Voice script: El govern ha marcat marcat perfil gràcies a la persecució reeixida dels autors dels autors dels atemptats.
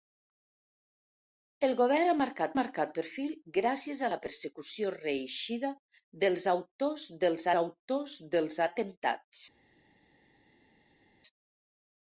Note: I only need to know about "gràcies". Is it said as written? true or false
true